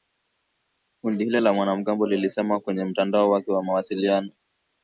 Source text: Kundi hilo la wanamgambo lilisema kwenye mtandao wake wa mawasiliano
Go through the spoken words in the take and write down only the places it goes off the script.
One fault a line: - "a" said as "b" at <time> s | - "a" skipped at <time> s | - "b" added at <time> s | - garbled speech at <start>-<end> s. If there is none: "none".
none